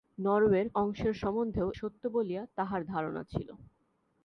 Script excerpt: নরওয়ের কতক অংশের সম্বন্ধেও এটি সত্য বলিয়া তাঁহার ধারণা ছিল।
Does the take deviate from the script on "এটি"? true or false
true